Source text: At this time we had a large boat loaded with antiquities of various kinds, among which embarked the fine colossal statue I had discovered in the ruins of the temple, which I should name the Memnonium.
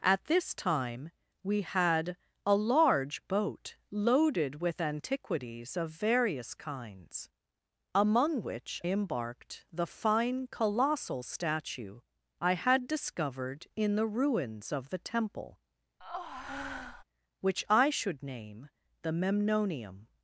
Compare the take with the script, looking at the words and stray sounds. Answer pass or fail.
fail